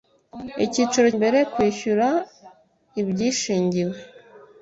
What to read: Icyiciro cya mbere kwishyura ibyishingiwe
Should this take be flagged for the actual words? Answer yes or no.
yes